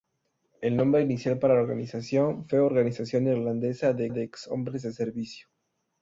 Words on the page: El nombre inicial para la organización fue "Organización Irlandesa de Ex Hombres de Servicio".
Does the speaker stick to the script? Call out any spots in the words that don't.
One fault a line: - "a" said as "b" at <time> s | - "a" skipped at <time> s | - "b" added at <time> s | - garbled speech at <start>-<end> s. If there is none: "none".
- "de" added at 4.1 s